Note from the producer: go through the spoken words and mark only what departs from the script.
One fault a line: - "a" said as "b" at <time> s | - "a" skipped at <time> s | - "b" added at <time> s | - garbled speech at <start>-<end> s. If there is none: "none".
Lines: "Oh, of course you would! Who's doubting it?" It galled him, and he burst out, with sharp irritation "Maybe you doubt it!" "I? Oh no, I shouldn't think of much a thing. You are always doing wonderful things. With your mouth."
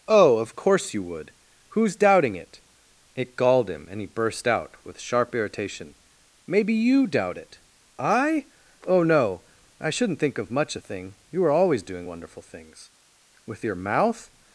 none